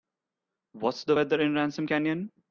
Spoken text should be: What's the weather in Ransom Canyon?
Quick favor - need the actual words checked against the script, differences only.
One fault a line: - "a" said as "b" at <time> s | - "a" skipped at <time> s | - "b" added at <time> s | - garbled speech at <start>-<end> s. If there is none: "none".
none